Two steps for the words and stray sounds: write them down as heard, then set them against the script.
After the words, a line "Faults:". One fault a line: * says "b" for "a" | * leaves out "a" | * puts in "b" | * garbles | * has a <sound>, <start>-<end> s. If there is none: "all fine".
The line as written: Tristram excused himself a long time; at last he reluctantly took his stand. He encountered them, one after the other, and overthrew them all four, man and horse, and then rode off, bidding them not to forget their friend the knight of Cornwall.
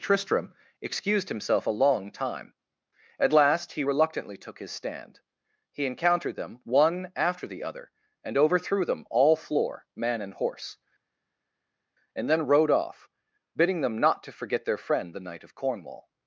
Tristram excused himself a long time; at last he reluctantly took his stand. He encountered them, one after the other, and overthrew them all floor, man and horse, and then rode off, bidding them not to forget their friend the knight of Cornwall.
Faults:
* says "floor" for "four"